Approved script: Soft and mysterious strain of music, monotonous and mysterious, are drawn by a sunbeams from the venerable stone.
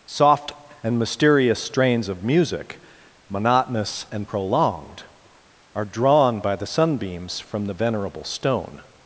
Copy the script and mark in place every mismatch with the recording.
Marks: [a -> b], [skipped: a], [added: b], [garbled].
Soft and mysterious [strain -> strains] of music, monotonous and [mysterious, -> prolonged] are drawn by [a -> the] sunbeams from the venerable stone.